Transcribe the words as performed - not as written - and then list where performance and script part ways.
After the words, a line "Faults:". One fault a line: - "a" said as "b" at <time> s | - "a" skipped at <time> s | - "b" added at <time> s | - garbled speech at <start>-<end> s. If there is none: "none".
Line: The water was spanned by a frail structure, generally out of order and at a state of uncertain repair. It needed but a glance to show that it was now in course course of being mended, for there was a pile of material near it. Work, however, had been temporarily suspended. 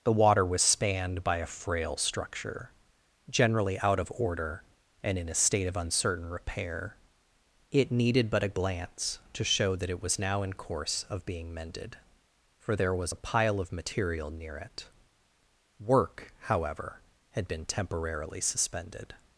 The water was spanned by a frail structure, generally out of order and in a state of uncertain repair. It needed but a glance to show that it was now in course of being mended, for there was a pile of material near it. Work, however, had been temporarily suspended.
Faults:
- "at" said as "in" at 5.2 s
- "course" skipped at 11.1 s